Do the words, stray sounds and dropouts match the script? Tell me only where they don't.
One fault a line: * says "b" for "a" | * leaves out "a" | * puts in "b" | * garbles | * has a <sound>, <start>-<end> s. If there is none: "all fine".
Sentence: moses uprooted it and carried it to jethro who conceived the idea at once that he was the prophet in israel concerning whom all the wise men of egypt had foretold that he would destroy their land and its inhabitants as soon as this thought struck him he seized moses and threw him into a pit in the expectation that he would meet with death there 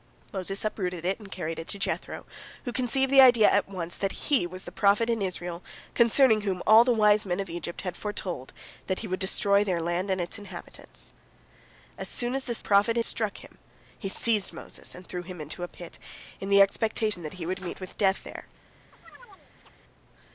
* says "prophet" for "thought"
* has a chirp, 18.9-19.7 s